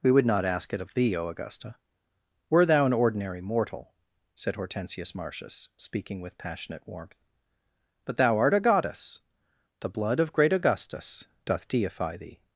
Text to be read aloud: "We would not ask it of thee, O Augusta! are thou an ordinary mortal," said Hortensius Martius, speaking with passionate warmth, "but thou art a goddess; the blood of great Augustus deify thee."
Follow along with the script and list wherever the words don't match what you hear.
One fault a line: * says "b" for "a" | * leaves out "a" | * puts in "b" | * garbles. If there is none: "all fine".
* says "were" for "are"
* puts in "doth"